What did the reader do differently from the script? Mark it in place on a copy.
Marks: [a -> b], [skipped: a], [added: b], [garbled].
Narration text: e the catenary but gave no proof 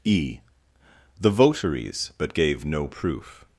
e the [catenary -> votaries] but gave no proof